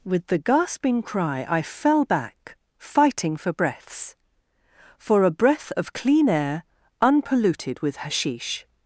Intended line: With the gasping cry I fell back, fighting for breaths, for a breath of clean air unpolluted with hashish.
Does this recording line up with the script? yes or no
yes